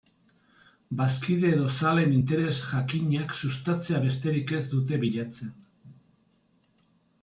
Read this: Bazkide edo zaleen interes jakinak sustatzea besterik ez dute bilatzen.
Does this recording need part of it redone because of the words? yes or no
no